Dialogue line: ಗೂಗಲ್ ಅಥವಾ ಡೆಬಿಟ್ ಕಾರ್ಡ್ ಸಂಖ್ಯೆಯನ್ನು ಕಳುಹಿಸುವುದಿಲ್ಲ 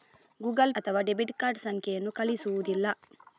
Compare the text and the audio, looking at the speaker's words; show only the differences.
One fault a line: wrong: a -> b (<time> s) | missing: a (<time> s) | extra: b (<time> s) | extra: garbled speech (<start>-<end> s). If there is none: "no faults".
no faults